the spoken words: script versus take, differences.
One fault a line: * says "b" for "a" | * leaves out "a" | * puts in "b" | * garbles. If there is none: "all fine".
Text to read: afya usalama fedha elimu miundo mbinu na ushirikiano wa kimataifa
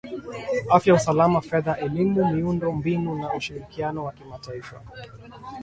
all fine